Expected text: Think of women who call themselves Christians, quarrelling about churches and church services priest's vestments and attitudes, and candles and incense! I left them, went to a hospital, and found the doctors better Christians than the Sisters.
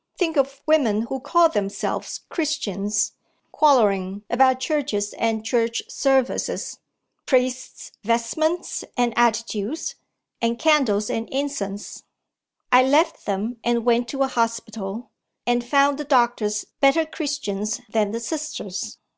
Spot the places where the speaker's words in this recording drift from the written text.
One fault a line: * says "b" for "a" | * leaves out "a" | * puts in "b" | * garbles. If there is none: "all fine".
* puts in "and"